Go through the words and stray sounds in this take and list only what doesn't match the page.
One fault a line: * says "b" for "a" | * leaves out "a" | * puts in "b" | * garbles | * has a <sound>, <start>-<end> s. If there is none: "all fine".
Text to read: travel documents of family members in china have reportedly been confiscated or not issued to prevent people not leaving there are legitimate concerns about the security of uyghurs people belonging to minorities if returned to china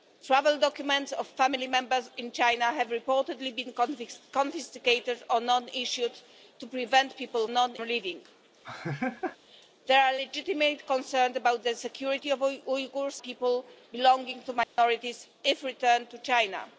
* has a laugh, 8.6-9.4 s
* has a dropout, 14.6-14.8 s